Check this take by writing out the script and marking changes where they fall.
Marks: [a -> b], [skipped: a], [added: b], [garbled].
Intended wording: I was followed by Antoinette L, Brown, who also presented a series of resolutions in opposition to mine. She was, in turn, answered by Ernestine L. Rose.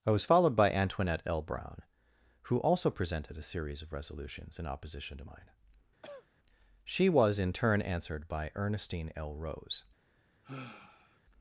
I was followed by Antoinette L, Brown, who also presented a series of resolutions in opposition to mine. She was, in turn, answered by Ernestine L. Rose.